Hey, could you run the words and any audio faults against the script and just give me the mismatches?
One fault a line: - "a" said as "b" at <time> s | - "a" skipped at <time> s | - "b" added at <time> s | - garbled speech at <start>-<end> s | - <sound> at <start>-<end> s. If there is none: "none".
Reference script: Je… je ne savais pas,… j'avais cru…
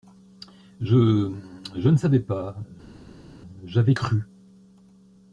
none